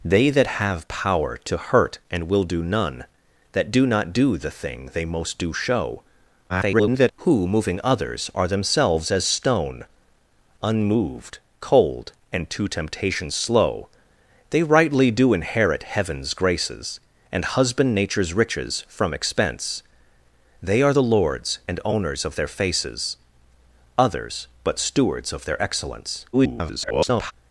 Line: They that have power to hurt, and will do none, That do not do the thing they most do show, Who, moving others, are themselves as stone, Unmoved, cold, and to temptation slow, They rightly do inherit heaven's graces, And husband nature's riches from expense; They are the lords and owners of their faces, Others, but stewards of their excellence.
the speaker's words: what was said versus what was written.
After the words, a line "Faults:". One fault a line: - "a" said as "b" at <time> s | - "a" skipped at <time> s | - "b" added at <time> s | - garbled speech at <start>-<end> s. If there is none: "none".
They that have power to hurt, and will do none, That do not do the thing they most do show, [garbled] Who, moving others, are themselves as stone, Unmoved, cold, and to temptation slow, They rightly do inherit heaven's graces, And husband nature's riches from expense; They are the lords and owners of their faces, Others, but stewards of their excellence. [garbled]
Faults:
- garbled speech at 6.5-7.1 s
- garbled speech at 26.3-27.3 s